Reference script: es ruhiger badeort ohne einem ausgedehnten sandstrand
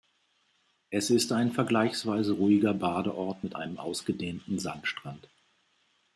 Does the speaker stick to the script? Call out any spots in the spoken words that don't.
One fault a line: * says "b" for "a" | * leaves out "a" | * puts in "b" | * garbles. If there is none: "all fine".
* puts in "ist ein vergleichsweise"
* says "mit" for "ohne"